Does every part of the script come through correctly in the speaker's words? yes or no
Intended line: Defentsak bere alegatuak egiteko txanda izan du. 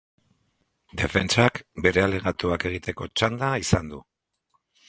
yes